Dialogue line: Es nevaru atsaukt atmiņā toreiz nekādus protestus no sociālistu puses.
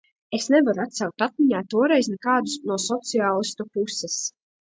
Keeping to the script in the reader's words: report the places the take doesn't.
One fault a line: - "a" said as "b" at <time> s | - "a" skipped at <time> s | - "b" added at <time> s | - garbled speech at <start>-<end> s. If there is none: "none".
- "protestus" skipped at 2.5 s